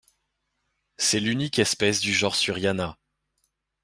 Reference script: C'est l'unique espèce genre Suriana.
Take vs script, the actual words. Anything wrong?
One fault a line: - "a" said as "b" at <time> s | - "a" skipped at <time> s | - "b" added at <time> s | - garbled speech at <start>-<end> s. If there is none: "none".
- "du" added at 2.0 s